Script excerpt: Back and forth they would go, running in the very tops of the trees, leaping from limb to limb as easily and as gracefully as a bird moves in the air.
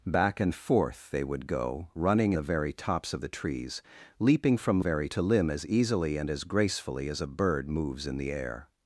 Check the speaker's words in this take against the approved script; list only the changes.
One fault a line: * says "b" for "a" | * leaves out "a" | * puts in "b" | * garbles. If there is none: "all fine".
* leaves out "in"
* says "very" for "limb"